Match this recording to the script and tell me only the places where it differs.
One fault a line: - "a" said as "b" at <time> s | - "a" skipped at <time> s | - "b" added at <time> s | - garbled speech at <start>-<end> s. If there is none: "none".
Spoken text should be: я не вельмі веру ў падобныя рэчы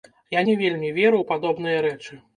none